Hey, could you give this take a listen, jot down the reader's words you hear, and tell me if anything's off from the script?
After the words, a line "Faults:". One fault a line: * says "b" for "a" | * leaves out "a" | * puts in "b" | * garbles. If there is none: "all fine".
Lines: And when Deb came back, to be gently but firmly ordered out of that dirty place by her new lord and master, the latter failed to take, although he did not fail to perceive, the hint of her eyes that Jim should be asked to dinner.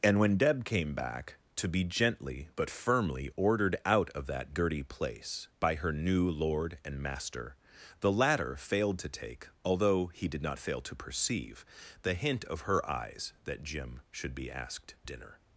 And when Deb came back, to be gently but firmly ordered out of that dirty place by her new lord and master, the latter failed to take, although he did not fail to perceive, the hint of her eyes that Jim should be asked dinner.
Faults:
* leaves out "to"